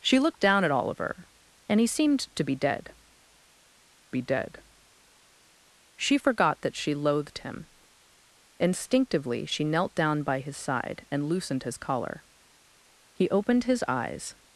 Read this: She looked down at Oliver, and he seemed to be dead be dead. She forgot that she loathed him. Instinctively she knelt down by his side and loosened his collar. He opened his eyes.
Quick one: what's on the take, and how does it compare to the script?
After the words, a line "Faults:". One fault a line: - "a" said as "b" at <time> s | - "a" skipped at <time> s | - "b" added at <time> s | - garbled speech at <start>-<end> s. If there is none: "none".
She looked down at Oliver, and he seemed to be dead be dead. She forgot that she loathed him. Instinctively she knelt down by his side and loosened his collar. He opened his eyes.
Faults:
none